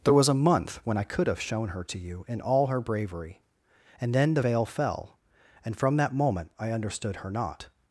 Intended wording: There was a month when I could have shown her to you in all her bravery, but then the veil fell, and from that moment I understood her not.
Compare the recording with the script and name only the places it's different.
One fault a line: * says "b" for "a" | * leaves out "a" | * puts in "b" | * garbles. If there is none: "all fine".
* says "and" for "but"